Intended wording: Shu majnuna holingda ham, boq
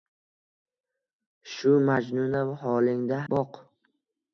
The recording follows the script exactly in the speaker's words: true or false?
false